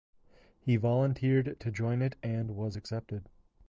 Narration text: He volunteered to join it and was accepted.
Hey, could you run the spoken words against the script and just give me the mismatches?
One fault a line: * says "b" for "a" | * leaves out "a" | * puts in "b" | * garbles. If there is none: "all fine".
all fine